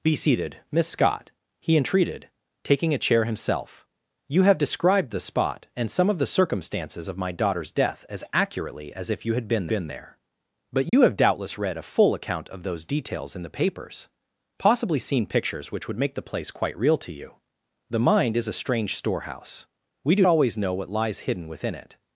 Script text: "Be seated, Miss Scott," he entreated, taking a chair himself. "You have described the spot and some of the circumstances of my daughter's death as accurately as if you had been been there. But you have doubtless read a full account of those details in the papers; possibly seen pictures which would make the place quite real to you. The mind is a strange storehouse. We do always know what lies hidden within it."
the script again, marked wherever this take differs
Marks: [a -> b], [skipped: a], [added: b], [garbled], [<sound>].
"Be seated, Miss Scott," he entreated, taking a chair himself. "You have described the spot and some of the circumstances of my daughter's death as accurately as if you had been been there. But you [dropout] have doubtless read a full account of those details in the papers; possibly seen pictures which would make the place quite real to you. The mind is a strange storehouse. We do always know what lies hidden within it."